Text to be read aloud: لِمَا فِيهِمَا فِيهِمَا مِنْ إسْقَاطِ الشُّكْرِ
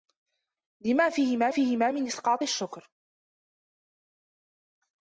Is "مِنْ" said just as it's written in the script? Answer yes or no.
yes